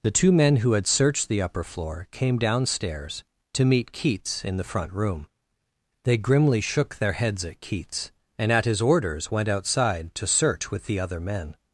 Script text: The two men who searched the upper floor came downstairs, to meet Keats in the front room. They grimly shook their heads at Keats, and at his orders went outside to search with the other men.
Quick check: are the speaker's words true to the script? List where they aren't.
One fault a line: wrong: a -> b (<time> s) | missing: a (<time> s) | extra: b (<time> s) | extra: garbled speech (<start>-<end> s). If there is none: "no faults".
extra: had (0.7 s)